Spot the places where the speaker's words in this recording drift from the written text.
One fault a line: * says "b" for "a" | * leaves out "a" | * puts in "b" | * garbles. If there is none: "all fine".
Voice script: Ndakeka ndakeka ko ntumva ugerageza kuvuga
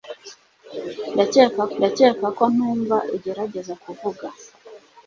all fine